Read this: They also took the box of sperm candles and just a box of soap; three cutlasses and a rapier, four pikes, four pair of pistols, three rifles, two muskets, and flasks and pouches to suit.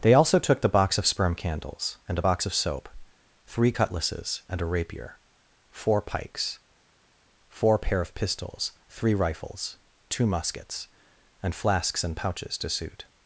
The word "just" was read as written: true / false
false